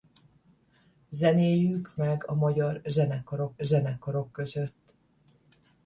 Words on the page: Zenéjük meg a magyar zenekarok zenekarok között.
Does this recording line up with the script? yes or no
yes